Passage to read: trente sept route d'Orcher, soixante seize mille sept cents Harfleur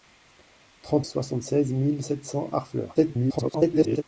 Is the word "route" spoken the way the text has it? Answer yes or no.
no